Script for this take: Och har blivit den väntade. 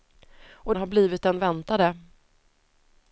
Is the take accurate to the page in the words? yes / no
yes